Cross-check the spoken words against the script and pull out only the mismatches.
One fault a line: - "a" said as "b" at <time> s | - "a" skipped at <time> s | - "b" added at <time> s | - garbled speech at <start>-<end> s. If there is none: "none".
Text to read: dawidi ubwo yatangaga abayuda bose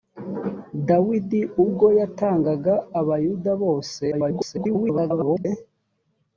- garbled speech at 4.1-5.5 s